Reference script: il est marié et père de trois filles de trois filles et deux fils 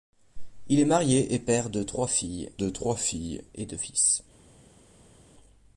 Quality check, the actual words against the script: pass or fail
pass